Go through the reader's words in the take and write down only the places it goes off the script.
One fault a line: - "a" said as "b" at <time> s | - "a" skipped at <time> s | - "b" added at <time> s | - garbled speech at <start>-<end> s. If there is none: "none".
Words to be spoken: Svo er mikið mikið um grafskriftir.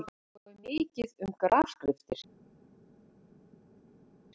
- "mikið" skipped at 1.3 s